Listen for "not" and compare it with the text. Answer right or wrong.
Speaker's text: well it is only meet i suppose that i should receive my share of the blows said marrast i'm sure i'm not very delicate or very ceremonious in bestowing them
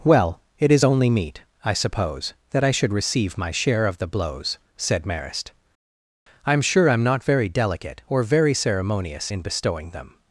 right